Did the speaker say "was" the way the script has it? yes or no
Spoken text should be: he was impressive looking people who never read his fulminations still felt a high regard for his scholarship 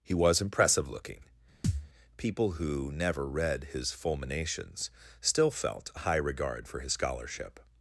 yes